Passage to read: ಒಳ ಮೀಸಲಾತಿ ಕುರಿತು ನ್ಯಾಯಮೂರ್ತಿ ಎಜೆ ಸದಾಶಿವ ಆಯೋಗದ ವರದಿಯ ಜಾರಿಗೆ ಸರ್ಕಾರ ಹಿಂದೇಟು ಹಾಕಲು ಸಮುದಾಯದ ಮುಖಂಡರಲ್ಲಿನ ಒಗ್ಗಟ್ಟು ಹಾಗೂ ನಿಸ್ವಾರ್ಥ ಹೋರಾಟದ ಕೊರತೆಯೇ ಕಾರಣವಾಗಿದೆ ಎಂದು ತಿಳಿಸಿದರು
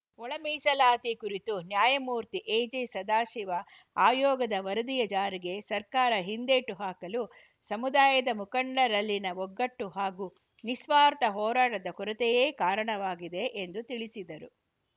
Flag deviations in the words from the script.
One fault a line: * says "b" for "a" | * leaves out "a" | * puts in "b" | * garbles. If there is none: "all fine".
all fine